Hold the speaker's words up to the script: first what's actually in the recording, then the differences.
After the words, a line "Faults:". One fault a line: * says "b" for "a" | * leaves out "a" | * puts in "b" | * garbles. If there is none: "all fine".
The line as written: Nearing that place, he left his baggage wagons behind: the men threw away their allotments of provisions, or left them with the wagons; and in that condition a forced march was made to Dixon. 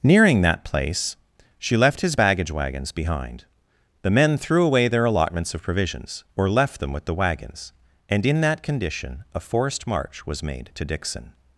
Nearing that place, she left his baggage wagons behind: the men threw away their allotments of provisions, or left them with the wagons; and in that condition a forced march was made to Dixon.
Faults:
* says "she" for "he"